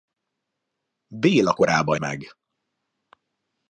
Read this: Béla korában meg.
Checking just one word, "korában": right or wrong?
right